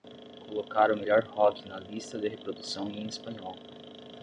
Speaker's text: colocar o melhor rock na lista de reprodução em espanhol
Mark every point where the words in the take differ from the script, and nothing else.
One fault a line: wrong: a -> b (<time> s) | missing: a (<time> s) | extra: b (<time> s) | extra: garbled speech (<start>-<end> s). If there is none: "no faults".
no faults